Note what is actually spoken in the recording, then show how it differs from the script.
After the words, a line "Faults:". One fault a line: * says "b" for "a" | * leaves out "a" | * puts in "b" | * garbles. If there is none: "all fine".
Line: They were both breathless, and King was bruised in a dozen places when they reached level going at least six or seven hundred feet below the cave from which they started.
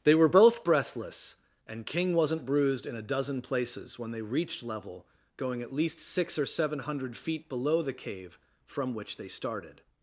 They were both breathless, and King wasn't bruised in a dozen places when they reached level going at least six or seven hundred feet below the cave from which they started.
Faults:
* says "wasn't" for "was"